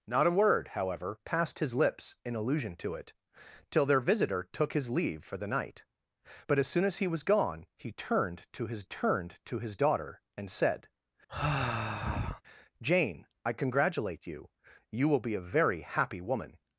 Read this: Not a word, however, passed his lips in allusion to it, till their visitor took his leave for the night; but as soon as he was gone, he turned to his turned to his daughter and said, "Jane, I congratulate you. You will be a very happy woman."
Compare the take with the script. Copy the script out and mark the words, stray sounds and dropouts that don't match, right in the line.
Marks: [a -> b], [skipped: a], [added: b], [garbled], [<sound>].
Not a word, however, passed his lips in allusion to it, till their visitor took his leave for the night; but as soon as he was gone, he turned to his turned to his daughter and said, [sigh] "Jane, I congratulate you. You will be a very happy woman."